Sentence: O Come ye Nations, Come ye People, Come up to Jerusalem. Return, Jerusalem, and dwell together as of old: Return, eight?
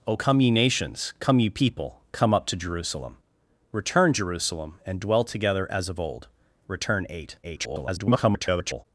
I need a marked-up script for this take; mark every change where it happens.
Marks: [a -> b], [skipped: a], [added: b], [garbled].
O Come ye Nations, Come ye People, Come up to Jerusalem. Return, Jerusalem, and dwell together as of old: Return, eight? [garbled]